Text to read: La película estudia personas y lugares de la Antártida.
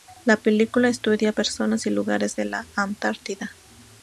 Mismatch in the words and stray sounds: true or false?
false